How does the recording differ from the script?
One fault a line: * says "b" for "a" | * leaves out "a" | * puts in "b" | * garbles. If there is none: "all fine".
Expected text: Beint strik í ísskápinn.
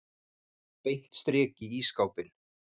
all fine